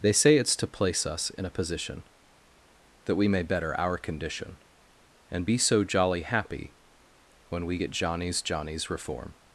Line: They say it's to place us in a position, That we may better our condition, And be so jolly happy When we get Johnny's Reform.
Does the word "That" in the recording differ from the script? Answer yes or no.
no